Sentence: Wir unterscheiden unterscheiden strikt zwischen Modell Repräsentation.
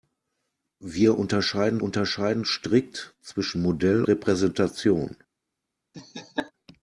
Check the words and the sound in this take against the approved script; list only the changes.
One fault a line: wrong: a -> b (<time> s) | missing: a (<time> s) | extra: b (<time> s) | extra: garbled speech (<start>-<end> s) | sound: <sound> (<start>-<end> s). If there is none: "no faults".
sound: laugh (5.9-6.5 s)